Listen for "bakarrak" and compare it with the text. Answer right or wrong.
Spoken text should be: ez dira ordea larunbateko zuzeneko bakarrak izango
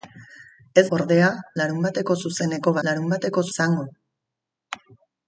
wrong